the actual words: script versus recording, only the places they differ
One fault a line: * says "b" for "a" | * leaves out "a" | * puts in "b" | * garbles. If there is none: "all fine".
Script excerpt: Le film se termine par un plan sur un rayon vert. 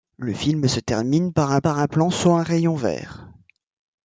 * puts in "par un"